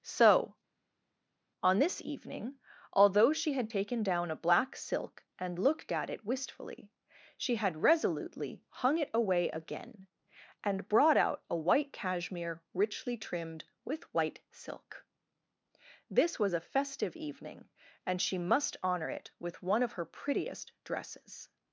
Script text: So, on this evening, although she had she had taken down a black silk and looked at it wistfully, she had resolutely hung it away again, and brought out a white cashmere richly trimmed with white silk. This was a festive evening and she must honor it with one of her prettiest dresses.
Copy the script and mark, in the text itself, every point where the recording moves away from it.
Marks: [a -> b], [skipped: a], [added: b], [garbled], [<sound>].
So, on this evening, although she had [skipped: she had] taken down a black silk and looked at it wistfully, she had resolutely hung it away again, and brought out a white cashmere richly trimmed with white silk. This was a festive evening and she must honor it with one of her prettiest dresses.